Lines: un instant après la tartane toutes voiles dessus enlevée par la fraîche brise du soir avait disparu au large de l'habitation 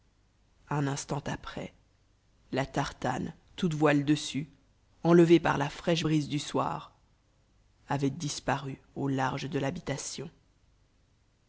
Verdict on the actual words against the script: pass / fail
pass